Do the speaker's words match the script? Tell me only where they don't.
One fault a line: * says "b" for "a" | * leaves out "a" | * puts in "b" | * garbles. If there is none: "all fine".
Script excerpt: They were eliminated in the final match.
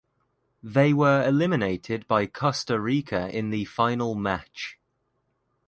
* puts in "by Costa Rica"